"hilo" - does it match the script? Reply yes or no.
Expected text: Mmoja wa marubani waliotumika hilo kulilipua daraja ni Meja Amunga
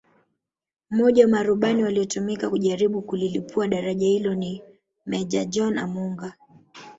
no